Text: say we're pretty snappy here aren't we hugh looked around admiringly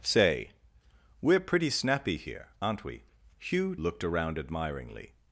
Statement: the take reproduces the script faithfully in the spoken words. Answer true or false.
true